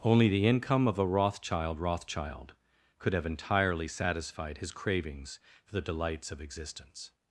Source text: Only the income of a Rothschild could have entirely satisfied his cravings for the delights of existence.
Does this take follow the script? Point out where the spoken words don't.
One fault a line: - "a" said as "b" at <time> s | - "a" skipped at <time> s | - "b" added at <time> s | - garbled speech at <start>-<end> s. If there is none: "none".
- "Rothschild" added at 1.8 s